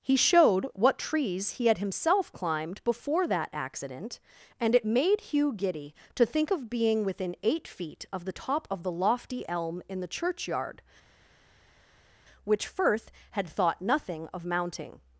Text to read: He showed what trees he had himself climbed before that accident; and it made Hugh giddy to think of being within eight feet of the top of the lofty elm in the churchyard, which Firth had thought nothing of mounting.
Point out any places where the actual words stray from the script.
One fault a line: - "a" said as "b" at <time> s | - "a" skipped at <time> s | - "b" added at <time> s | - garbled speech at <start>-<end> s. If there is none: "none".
none